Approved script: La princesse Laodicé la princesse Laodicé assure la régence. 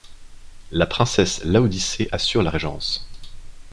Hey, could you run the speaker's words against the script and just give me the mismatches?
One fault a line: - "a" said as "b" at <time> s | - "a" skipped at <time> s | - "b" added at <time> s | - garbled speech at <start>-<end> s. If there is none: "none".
- "la princesse Laodicé" skipped at 2.1 s